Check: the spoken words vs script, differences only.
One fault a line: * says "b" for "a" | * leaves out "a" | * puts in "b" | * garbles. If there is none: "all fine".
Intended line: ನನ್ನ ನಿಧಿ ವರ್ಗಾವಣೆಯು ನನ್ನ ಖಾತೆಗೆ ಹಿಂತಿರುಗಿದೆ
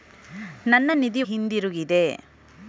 * leaves out "ವರ್ಗಾವಣೆಯು ನನ್ನ ಖಾತೆಗೆ"